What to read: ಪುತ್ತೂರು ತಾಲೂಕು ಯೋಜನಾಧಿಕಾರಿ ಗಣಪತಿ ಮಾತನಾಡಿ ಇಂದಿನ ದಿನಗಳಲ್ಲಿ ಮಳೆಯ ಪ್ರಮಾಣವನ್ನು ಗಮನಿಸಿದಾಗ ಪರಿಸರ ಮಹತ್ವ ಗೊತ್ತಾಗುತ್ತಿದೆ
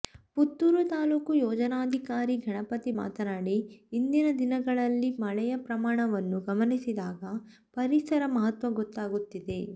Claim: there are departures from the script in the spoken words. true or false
false